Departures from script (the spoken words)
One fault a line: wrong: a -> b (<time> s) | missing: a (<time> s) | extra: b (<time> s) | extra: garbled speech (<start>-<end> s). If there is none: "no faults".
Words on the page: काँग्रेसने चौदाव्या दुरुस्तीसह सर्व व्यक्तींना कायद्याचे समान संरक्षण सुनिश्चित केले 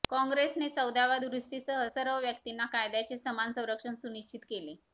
no faults